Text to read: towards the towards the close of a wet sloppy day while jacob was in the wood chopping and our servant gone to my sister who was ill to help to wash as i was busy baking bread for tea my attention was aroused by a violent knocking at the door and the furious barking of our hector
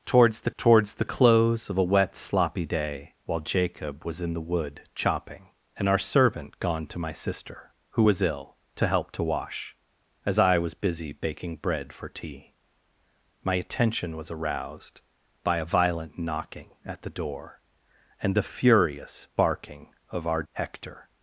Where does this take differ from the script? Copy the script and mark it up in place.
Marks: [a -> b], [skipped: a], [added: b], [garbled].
towards the towards the close of a wet sloppy day while jacob was in the wood chopping and our servant gone to my sister who was ill to help to wash as i was busy baking bread for tea my attention was aroused by a violent knocking at the door and the furious barking of our hector